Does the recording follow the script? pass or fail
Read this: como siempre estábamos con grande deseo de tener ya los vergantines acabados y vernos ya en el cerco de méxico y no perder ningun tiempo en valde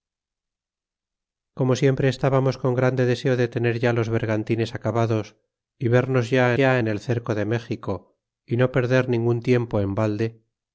fail